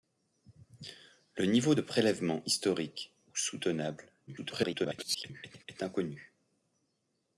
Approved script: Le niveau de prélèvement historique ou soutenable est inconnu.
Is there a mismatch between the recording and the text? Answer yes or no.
yes